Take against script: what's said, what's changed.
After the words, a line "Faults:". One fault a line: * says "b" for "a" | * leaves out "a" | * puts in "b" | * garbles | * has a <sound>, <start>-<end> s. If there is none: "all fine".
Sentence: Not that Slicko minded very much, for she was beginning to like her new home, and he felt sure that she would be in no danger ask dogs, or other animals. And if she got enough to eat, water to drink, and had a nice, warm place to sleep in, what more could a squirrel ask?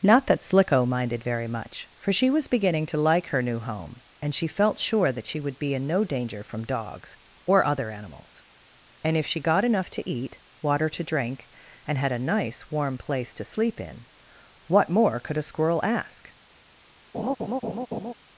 Not that Slicko minded very much, for she was beginning to like her new home, and she felt sure that she would be in no danger from dogs, or other animals. And if she got enough to eat, water to drink, and had a nice, warm place to sleep in, what more could a squirrel ask?
Faults:
* says "she" for "he"
* says "from" for "ask"
* has a laugh, 17.1-18.1 s